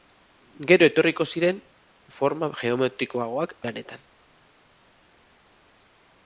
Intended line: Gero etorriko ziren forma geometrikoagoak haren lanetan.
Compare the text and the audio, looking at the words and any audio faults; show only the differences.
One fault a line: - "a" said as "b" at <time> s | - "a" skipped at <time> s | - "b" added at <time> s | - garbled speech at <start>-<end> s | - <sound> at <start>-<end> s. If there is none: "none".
- "haren" skipped at 3.5 s